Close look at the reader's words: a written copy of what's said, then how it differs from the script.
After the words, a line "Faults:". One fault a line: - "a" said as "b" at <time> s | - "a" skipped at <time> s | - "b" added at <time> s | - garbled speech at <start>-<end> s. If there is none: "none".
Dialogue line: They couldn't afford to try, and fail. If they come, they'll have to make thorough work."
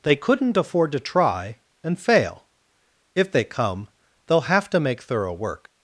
They couldn't afford to try, and fail. If they come, they'll have to make thorough work."
Faults:
none